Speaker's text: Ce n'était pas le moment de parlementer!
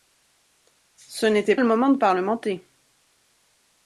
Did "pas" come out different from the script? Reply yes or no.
yes